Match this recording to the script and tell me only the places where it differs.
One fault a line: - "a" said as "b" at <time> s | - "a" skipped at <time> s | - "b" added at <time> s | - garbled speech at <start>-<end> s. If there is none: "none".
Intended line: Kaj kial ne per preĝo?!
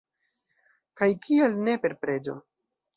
none